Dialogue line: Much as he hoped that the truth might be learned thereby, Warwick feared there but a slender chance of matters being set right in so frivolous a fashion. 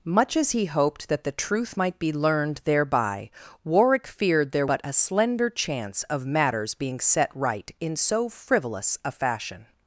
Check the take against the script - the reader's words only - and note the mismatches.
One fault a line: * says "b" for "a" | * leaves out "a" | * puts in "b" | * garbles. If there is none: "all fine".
all fine